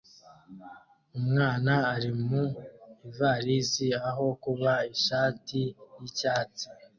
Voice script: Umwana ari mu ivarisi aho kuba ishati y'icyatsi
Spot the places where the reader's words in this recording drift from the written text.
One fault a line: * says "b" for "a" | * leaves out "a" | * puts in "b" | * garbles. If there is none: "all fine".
all fine